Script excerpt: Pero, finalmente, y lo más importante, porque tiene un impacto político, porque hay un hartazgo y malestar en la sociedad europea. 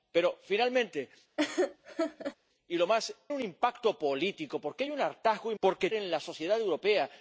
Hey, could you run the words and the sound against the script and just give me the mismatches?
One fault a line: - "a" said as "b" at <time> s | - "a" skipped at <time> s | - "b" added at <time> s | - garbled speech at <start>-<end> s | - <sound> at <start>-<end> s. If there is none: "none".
- laugh at 1.4-2.4 s
- "importante porque tiene" skipped at 3.1 s
- "malestar" said as "porque" at 5.6 s